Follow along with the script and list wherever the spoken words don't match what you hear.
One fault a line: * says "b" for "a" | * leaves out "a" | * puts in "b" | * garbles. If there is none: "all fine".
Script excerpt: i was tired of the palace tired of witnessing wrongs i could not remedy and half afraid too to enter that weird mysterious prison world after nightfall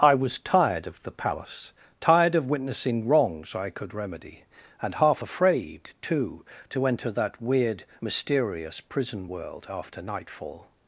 * leaves out "not"